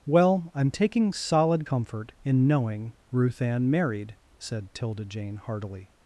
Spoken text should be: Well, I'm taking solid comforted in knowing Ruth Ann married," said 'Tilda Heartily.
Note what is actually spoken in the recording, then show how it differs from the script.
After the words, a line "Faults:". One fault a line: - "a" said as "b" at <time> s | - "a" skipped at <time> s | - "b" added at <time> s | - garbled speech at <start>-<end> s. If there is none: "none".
Well, I'm taking solid comfort in knowing Ruth Ann married," said 'Tilda Jane heartily.
Faults:
- "comforted" said as "comfort" at 1.6 s
- "Jane" added at 5.0 s